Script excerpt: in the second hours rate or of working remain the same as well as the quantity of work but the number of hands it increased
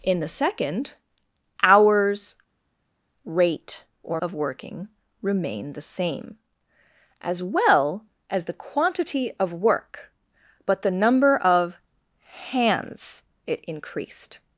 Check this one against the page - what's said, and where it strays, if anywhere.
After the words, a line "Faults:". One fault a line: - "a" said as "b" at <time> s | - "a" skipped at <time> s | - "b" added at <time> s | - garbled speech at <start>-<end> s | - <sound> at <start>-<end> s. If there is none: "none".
in the second hours rate or of working remain the same as well as the quantity of work but the number of hands it increased
Faults:
none